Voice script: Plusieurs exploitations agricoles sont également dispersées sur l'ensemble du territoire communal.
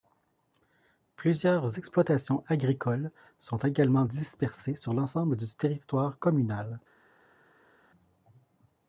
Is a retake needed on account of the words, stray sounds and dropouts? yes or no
no